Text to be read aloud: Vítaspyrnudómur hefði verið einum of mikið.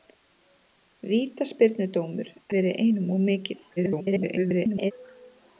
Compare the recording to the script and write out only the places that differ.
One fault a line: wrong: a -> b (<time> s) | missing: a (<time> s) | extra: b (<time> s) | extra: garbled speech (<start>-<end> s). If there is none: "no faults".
missing: hefði (2.3 s)
extra: garbled speech (3.8-4.9 s)